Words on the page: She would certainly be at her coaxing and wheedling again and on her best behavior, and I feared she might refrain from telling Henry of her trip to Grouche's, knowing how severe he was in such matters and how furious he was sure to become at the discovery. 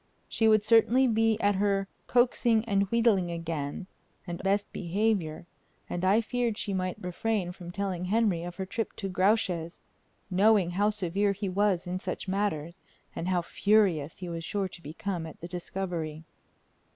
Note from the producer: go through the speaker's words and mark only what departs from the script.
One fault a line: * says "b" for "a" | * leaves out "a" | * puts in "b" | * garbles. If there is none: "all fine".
* leaves out "on her"